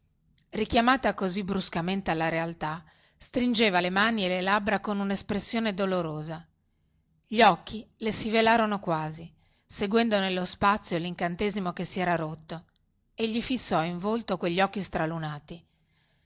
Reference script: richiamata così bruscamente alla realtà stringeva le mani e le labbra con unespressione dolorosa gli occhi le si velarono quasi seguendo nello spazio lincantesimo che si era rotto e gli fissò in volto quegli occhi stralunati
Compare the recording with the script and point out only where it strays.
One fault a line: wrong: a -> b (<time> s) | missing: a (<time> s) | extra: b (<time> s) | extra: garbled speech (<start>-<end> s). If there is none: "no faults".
no faults